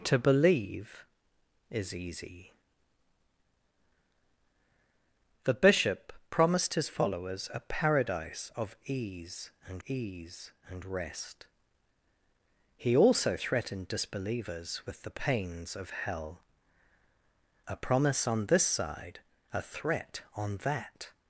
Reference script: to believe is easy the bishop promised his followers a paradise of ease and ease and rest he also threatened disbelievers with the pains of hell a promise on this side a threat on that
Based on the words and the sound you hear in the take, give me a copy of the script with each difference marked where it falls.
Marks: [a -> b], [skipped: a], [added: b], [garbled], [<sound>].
to believe is easy the bishop promised his followers a paradise of ease and ease and rest he also threatened disbelievers with the pains of hell a promise on this side a threat on that